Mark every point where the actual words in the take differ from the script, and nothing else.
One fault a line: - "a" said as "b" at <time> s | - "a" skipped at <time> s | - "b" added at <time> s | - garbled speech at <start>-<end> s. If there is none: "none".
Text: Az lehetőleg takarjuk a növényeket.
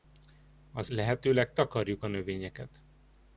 none